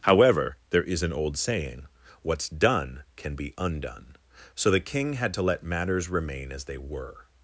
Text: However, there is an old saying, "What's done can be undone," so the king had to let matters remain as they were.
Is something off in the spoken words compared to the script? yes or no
no